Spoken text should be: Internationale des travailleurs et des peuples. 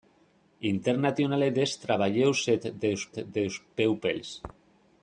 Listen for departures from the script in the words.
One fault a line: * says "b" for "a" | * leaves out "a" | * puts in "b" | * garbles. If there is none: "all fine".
* puts in "des"